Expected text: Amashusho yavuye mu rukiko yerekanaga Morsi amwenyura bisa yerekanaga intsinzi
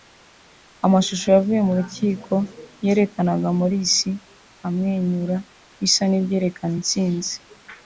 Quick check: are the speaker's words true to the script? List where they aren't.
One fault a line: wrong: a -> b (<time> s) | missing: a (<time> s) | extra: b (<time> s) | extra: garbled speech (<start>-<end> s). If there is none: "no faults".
wrong: yerekanaga -> n'ibyerekana (6.1 s)